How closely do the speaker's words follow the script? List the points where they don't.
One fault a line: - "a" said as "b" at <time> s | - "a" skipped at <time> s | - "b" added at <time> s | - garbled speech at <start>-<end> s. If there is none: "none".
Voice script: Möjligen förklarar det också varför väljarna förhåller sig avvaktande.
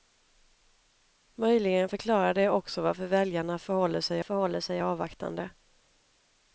- "förhåller sig" added at 4.2 s